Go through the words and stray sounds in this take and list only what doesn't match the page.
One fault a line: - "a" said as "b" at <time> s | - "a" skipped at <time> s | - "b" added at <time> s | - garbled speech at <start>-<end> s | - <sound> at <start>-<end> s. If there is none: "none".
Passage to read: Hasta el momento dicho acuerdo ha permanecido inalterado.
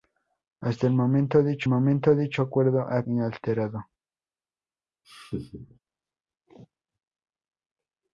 - "momento dicho" added at 1.7 s
- "permanecido" skipped at 3.0 s
- laugh at 5.0-5.8 s